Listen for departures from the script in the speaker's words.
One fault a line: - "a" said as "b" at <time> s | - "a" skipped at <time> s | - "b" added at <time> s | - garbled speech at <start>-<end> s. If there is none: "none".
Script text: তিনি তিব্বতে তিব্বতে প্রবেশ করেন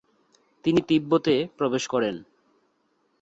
- "তিব্বতে" skipped at 1.4 s